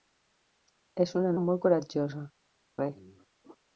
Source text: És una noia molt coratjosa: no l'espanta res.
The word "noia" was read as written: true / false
false